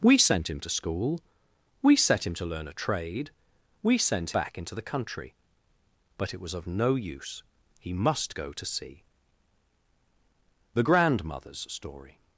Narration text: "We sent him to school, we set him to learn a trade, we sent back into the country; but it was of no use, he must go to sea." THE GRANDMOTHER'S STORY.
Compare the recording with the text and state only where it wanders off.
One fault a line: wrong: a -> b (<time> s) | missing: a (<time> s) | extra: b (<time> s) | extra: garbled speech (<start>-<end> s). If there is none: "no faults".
no faults